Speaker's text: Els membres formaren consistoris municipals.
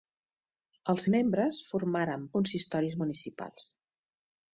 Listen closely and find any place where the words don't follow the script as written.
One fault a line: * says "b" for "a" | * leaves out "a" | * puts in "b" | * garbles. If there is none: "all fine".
all fine